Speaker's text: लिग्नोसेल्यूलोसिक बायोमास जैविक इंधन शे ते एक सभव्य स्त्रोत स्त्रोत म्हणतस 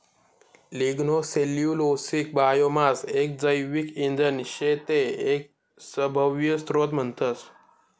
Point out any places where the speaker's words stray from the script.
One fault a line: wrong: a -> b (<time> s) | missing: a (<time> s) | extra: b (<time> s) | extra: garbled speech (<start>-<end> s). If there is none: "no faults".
extra: एक (3.1 s)
missing: स्त्रोत (6.9 s)